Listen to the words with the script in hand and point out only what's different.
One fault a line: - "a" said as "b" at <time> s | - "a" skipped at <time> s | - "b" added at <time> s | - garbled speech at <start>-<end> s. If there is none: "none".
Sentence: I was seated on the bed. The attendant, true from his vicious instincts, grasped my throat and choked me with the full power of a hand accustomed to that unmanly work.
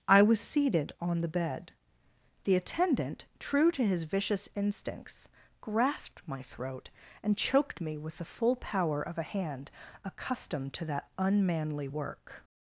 - "from" said as "to" at 3.7 s